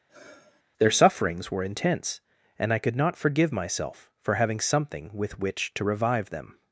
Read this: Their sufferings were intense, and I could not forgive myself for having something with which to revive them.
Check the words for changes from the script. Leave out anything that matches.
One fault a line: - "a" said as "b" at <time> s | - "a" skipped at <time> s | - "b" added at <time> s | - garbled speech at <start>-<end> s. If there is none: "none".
none